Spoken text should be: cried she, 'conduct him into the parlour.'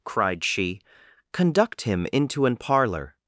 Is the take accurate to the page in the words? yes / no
no